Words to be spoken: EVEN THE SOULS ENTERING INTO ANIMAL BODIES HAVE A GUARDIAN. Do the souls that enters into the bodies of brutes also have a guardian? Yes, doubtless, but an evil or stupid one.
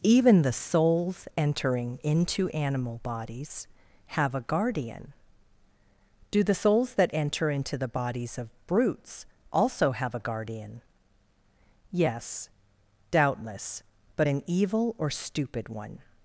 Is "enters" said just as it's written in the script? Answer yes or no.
no